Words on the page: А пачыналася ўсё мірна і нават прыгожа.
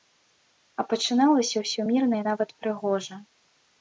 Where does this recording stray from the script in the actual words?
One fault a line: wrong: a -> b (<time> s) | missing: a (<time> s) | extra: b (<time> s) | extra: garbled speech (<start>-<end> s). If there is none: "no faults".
no faults